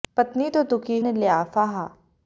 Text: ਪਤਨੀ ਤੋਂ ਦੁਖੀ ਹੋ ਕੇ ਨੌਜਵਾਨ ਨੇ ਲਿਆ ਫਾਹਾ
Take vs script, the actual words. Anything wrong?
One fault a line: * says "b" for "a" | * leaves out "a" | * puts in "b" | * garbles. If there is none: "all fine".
* leaves out "ਹੋ ਕੇ ਨੌਜਵਾਨ"